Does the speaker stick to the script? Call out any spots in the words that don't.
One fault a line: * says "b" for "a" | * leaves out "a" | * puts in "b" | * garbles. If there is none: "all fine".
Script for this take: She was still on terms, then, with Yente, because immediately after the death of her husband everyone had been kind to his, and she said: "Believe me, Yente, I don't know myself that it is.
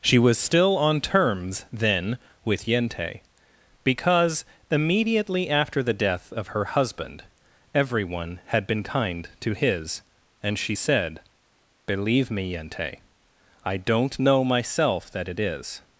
all fine